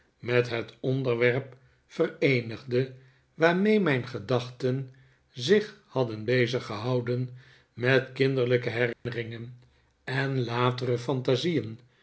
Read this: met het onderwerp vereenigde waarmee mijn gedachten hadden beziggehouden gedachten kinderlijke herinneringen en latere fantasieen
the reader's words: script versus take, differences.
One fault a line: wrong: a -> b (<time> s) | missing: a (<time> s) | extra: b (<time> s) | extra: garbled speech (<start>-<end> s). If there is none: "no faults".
extra: zich (5.3 s)
wrong: gedachten -> met (7.7 s)